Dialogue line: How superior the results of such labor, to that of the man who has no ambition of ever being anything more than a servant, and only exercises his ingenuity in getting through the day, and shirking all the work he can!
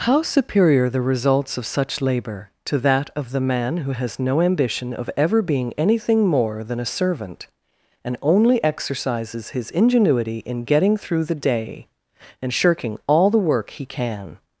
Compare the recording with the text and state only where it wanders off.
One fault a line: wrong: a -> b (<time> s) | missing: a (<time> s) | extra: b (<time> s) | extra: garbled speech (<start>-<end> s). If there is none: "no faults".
no faults